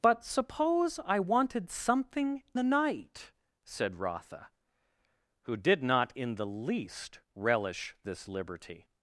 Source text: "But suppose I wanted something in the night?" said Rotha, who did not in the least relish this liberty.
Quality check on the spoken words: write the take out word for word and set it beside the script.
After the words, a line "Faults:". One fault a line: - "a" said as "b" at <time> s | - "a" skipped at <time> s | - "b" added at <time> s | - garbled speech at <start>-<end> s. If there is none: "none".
"But suppose I wanted something the night?" said Rotha, who did not in the least relish this liberty.
Faults:
- "in" skipped at 2.4 s